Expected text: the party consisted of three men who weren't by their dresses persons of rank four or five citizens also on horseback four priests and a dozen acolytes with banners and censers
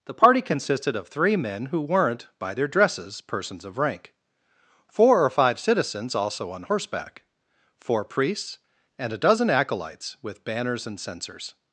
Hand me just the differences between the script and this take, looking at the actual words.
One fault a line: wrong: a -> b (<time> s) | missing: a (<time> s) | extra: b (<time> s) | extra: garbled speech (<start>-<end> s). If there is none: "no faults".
no faults